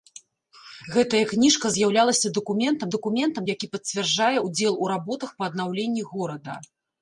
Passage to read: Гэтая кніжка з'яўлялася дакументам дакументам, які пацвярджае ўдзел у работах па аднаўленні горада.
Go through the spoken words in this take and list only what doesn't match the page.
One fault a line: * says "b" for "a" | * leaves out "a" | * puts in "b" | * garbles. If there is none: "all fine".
all fine